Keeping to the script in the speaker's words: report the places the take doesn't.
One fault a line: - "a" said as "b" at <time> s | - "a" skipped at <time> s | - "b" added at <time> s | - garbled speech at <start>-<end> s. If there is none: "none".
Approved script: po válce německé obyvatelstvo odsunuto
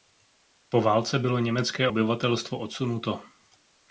- "bylo" added at 1.2 s